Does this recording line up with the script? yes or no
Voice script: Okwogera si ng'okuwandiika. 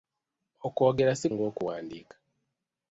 yes